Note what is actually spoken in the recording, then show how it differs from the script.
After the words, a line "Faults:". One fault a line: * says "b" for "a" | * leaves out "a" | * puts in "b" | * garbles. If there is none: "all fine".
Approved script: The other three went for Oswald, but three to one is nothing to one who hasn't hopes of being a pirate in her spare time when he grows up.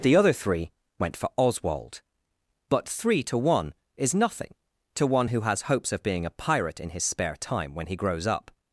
The other three went for Oswald, but three to one is nothing to one who has hopes of being a pirate in his spare time when he grows up.
Faults:
* says "has" for "hasn't"
* says "his" for "her"